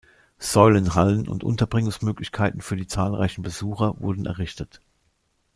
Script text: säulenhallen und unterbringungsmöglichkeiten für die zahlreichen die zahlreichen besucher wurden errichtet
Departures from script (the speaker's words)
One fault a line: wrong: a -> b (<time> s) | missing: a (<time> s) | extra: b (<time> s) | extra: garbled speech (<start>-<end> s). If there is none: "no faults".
missing: die zahlreichen (3.4 s)